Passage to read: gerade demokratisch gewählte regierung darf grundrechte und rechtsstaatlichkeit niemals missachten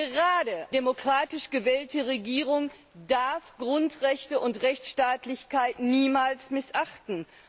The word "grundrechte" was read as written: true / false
true